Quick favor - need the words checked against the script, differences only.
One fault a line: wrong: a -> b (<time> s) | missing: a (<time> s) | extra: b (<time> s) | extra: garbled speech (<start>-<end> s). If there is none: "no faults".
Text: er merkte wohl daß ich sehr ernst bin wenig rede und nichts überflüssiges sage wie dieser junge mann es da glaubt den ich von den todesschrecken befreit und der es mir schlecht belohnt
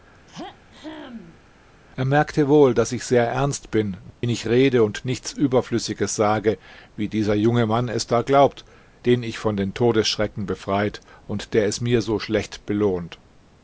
extra: so (12.0 s)